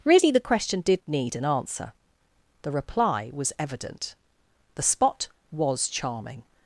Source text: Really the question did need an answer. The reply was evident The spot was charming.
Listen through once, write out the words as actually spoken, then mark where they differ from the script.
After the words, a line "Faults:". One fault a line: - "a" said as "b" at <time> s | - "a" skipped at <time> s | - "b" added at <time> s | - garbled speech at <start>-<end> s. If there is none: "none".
Really the question did need an answer. The reply was evident The spot was charming.
Faults:
none